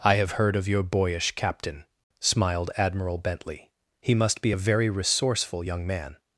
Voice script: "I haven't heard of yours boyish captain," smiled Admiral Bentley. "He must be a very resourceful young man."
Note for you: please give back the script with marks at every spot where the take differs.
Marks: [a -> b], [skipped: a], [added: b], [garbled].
"I [haven't -> have] heard of [yours -> your] boyish captain," smiled Admiral Bentley. "He must be a very resourceful young man."